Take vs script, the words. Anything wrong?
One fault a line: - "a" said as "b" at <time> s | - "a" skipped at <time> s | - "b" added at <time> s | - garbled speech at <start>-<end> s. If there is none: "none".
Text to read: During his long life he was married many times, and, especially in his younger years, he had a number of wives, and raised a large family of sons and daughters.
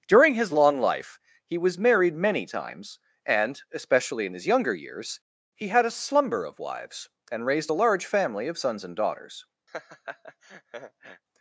- "number" said as "slumber" at 5.9 s